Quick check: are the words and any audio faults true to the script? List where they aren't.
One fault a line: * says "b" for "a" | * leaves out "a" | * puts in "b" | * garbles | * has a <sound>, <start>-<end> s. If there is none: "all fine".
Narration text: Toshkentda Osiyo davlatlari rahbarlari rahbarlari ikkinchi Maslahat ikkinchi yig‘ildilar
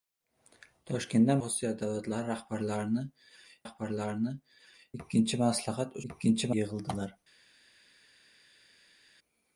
all fine